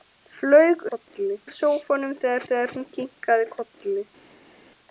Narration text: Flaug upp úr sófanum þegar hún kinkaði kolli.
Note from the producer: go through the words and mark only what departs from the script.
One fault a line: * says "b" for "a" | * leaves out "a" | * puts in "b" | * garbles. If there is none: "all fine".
* says "kolli" for "upp"
* puts in "þegar"